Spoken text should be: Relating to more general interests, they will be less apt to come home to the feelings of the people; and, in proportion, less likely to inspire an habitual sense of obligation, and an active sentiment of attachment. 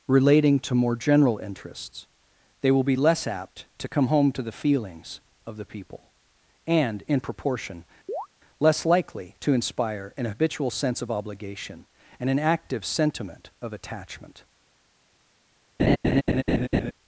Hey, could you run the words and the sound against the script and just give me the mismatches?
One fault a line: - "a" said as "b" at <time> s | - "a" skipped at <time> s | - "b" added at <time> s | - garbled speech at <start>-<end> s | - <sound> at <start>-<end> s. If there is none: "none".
- chirp at 8.1-8.3 s
- laugh at 15.8-16.9 s